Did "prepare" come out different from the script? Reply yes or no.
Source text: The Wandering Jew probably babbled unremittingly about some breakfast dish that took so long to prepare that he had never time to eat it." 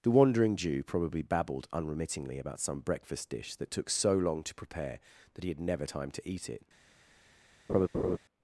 no